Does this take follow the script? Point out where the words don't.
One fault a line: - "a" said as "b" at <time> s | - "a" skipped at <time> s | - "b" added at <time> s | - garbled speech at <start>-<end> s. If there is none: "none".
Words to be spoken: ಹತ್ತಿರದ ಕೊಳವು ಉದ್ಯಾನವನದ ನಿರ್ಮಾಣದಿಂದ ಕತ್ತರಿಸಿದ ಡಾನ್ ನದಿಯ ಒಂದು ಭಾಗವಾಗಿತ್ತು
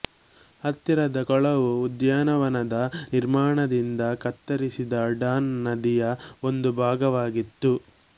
none